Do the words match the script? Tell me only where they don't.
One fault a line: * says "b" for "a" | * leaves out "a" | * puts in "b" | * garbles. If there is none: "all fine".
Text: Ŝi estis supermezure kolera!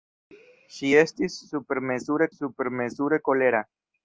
* puts in "supermezure"